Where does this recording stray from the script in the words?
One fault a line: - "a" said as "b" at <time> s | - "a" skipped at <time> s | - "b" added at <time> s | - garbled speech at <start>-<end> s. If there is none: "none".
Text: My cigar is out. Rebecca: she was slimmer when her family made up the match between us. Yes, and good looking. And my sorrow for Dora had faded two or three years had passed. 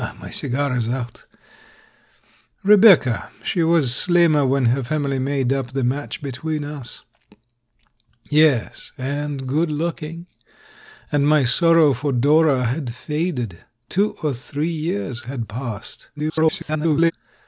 - garbled speech at 16.2-17.1 s